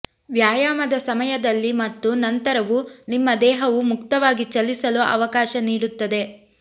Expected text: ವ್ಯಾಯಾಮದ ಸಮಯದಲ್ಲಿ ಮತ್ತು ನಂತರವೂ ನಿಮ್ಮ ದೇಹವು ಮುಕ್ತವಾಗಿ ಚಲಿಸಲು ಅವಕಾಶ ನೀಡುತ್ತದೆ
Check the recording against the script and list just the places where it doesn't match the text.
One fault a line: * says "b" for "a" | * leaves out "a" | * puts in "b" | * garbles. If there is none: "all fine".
all fine